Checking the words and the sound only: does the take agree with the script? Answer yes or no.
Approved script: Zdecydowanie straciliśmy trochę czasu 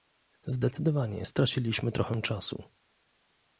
yes